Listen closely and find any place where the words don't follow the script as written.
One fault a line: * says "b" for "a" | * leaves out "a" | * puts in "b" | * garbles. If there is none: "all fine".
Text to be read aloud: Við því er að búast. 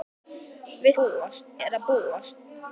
* says "búast" for "því"